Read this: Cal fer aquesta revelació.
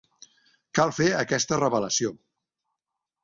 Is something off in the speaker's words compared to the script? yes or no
no